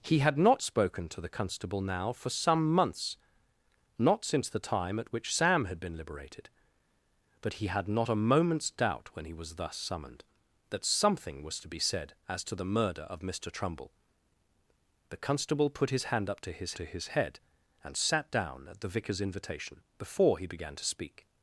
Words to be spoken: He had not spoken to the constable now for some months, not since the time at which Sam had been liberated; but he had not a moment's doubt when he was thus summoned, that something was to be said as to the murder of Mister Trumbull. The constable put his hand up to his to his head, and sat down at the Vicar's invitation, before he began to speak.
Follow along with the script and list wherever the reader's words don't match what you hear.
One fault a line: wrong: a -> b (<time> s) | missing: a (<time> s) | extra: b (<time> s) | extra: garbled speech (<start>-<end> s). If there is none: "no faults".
no faults